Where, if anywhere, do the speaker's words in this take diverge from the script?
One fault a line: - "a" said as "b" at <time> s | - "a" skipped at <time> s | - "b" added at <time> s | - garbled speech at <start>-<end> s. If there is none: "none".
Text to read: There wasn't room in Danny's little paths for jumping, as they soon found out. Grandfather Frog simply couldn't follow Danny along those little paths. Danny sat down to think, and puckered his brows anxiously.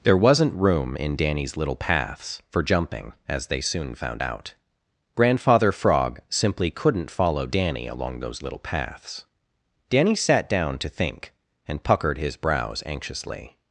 none